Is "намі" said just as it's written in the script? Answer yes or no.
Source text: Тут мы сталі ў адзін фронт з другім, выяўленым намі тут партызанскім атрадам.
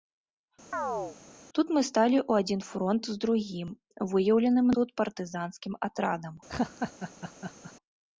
no